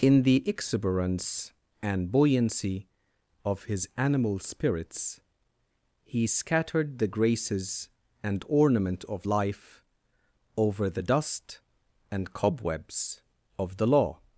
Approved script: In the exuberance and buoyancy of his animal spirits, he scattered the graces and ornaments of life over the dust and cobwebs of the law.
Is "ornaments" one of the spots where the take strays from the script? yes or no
yes